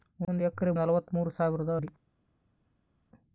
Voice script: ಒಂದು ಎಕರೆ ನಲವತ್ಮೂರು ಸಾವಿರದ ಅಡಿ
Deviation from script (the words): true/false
false